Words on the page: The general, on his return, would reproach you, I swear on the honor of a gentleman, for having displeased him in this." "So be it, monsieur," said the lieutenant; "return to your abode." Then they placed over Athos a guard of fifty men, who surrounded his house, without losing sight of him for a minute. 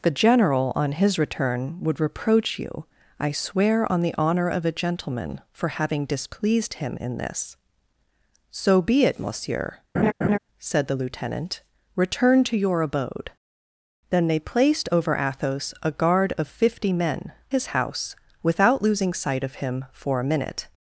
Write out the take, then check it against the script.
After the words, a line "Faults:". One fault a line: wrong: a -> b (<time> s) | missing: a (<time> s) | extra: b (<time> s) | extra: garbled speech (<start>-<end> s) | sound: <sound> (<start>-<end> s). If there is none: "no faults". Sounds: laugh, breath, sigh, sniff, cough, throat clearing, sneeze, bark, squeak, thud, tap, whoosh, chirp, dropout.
The general, on his return, would reproach you, I swear on the honor of a gentleman, for having displeased him in this." "So be it, monsieur," said the lieutenant; "return to your abode." Then they placed over Athos a guard of fifty men, his house, without losing sight of him for a minute.
Faults:
sound: laugh (9.9-10.4 s)
missing: who surrounded (17.3 s)